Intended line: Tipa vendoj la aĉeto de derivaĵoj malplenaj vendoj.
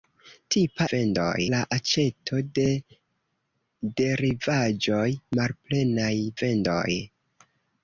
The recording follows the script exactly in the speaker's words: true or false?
true